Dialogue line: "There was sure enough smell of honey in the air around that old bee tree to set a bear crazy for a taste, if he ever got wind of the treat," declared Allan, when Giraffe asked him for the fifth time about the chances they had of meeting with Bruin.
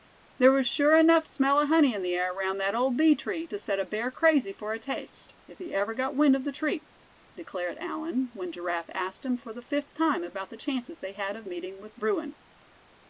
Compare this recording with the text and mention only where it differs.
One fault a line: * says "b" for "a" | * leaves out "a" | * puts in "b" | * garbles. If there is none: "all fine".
all fine